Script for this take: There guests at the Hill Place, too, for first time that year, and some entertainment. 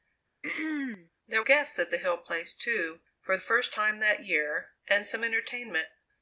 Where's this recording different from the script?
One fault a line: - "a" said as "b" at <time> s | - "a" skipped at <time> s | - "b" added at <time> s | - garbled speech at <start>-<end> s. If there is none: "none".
none